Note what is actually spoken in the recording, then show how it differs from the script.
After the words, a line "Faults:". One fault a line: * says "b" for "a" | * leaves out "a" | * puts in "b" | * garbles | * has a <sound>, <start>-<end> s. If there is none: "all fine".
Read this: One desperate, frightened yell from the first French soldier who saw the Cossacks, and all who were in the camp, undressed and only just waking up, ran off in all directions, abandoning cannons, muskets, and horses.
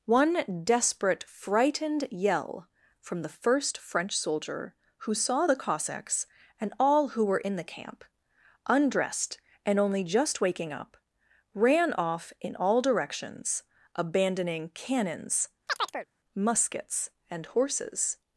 One desperate, frightened yell from the first French soldier who saw the Cossacks, and all who were in the camp, undressed and only just waking up, ran off in all directions, abandoning cannons, muskets, and horses.
Faults:
* has a chirp, 15.7-16.1 s